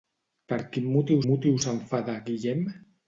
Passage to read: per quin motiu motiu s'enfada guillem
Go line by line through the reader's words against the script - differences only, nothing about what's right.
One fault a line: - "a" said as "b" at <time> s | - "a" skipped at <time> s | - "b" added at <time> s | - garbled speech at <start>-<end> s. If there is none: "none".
none